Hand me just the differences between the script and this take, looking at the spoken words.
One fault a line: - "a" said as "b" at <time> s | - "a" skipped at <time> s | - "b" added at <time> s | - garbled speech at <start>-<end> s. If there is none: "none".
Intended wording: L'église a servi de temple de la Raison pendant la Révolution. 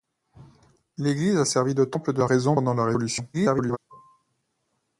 - garbled speech at 3.3-3.8 s